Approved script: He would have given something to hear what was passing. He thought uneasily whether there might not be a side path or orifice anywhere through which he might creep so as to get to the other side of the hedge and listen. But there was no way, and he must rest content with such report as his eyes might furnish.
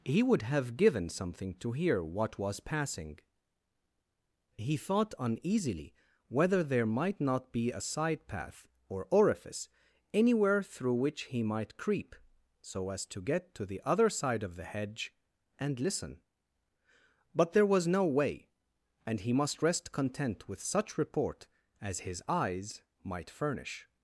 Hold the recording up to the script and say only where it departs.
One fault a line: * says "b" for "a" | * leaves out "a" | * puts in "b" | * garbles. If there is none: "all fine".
all fine